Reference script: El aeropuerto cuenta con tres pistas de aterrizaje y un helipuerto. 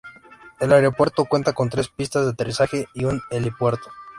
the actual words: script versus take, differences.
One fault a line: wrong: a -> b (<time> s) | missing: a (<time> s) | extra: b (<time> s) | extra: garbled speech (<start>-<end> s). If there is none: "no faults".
no faults